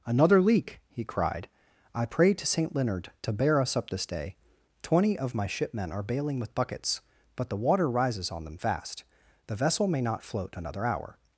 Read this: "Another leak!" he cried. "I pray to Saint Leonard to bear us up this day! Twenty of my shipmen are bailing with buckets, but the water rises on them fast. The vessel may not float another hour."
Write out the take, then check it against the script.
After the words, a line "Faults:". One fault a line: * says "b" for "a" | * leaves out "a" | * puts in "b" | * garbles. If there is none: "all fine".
"Another leak!" he cried. "I pray to Saint Leonard to bear us up this day! Twenty of my shipmen are bailing with buckets, but the water rises on them fast. The vessel may not float another hour."
Faults:
all fine